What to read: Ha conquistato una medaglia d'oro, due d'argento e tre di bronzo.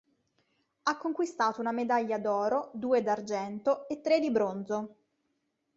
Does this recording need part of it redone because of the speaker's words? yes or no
no